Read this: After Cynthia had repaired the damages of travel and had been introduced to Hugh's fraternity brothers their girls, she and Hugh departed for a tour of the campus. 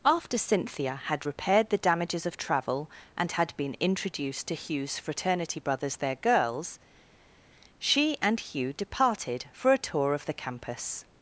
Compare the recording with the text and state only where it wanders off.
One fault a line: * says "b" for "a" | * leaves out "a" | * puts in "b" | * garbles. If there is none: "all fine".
all fine